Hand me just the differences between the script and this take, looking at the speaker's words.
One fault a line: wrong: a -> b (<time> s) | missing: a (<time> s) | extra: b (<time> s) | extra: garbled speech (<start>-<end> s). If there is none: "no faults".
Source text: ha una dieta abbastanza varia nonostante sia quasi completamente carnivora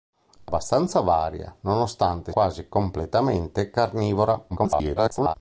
missing: una dieta (0.5 s)
missing: sia (2.3 s)
extra: garbled speech (4.5-5.3 s)